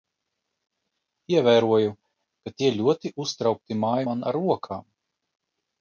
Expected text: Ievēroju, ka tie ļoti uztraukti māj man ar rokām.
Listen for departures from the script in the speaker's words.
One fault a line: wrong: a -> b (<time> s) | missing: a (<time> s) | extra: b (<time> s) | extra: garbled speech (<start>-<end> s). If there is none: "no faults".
no faults